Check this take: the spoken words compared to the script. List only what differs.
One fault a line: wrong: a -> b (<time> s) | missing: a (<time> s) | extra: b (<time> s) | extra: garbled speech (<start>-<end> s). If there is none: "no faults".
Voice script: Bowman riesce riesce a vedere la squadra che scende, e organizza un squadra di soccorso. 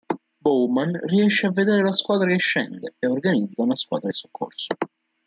missing: riesce (1.4 s)
wrong: un -> una (3.6 s)